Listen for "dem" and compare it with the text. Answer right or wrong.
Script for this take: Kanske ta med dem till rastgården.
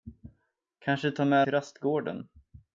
wrong